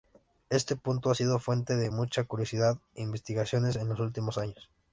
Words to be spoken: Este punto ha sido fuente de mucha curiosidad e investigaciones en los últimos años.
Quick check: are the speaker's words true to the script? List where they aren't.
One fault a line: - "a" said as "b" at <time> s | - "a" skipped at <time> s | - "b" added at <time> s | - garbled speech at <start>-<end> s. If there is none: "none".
none